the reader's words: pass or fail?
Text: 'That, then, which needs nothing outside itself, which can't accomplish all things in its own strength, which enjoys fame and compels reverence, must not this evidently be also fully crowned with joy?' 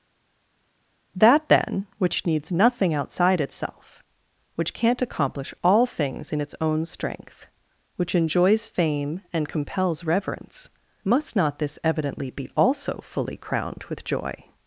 pass